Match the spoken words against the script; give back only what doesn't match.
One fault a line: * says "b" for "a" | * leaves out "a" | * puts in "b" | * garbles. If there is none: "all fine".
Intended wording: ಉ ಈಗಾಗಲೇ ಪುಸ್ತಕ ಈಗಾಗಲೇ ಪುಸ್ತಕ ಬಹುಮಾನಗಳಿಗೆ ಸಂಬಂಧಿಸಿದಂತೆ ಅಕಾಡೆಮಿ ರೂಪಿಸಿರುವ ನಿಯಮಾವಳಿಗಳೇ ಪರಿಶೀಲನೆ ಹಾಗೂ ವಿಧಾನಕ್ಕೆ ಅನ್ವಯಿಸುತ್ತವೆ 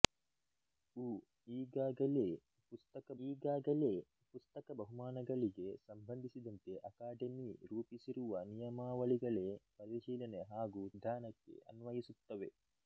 all fine